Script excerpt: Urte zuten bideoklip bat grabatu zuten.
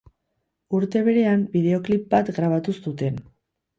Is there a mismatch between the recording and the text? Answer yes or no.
yes